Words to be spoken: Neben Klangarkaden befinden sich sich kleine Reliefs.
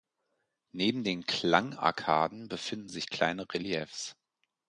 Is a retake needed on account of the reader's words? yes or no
yes